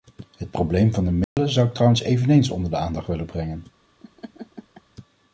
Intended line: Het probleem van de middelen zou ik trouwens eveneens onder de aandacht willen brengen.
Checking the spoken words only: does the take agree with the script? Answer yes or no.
yes